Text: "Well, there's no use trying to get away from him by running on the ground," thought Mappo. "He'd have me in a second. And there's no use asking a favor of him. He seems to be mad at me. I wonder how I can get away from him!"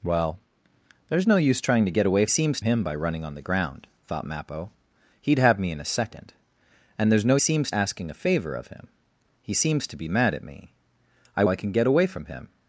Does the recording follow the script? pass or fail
fail